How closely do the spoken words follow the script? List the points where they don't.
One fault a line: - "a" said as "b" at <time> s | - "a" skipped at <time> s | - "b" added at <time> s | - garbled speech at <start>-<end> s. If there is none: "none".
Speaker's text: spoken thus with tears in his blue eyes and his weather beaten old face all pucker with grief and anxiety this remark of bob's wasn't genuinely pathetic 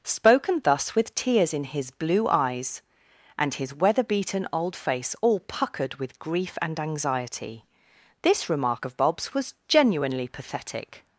- "pucker" said as "puckered" at 5.4 s
- "wasn't" said as "was" at 9.3 s